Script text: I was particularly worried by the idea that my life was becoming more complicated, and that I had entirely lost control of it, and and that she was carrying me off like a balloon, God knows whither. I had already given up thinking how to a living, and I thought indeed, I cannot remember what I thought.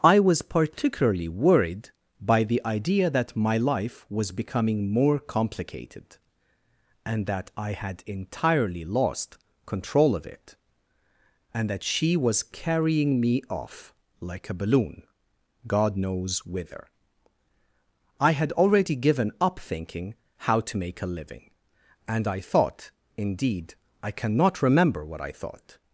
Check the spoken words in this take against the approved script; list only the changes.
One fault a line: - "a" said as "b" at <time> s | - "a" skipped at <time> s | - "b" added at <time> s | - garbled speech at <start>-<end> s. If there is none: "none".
- "and" skipped at 11.7 s
- "make" added at 20.8 s